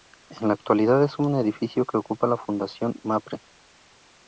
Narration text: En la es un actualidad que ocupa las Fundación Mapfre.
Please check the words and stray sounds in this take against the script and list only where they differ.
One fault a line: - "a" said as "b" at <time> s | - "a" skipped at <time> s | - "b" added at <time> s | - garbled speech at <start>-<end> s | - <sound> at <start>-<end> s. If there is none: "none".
- "actualidad" added at 0.6 s
- "actualidad" said as "edificio" at 1.4 s
- "las" said as "la" at 2.2 s